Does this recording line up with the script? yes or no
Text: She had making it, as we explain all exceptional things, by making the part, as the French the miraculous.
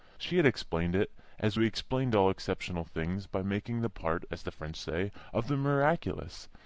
no